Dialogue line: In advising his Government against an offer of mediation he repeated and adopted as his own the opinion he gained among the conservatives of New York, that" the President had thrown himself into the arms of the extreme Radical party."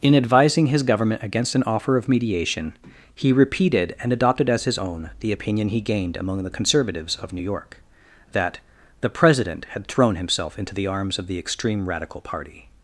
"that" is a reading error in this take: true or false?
false